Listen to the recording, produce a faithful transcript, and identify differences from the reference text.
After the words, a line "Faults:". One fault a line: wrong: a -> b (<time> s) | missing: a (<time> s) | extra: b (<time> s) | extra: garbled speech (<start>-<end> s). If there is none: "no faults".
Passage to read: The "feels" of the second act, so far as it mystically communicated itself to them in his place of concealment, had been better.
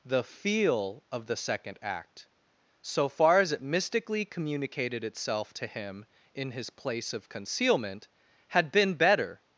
The "feel" of the second act, so far as it mystically communicated itself to him in his place of concealment, had been better.
Faults:
wrong: feels -> feel (0.2 s)
wrong: them -> him (5.7 s)